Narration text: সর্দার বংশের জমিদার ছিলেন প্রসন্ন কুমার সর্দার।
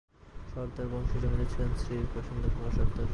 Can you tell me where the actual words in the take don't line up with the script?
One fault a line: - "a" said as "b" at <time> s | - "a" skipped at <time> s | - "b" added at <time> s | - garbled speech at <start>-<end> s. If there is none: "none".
- "শ্রী" added at 1.8 s